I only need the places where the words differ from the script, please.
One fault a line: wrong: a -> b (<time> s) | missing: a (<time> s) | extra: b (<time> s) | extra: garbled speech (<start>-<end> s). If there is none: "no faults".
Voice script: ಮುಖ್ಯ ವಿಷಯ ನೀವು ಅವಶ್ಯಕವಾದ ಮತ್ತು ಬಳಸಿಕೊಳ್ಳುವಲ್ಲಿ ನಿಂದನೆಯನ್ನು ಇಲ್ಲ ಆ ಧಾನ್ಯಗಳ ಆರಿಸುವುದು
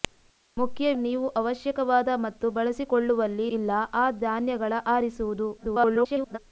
missing: ವಿಷಯ (0.9 s)
missing: ನಿಂದನೆಯನ್ನು (3.5 s)
extra: garbled speech (5.6-6.4 s)